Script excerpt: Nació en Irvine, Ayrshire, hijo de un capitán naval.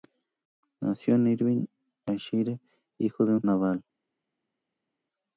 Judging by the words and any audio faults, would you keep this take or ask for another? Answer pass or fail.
fail